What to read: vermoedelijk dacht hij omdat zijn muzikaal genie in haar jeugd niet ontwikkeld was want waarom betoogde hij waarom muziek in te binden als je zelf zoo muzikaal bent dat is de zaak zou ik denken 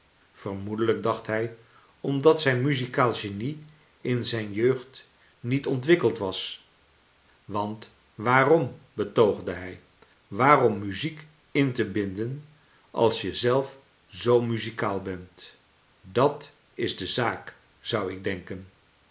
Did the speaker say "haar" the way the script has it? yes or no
no